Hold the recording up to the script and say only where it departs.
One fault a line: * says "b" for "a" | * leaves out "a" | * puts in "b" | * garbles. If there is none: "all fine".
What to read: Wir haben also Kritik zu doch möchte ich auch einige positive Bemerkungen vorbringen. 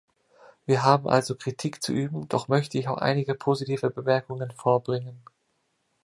* puts in "üben"